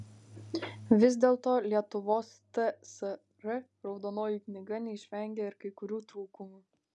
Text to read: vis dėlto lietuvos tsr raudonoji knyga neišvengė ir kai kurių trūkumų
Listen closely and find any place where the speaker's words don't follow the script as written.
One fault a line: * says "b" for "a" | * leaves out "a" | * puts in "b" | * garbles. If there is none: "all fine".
all fine